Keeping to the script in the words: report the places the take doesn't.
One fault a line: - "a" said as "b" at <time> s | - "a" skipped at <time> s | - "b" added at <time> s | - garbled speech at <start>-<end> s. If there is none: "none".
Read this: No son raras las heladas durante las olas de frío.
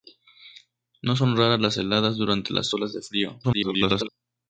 - garbled speech at 3.4-4.1 s